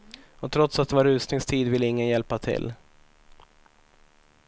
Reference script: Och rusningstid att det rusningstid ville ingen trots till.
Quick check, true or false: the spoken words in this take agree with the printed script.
false